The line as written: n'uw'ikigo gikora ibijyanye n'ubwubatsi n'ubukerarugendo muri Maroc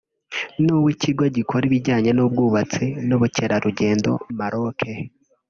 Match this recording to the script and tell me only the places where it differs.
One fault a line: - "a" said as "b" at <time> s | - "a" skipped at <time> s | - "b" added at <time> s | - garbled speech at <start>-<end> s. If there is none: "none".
- "muri" skipped at 4.1 s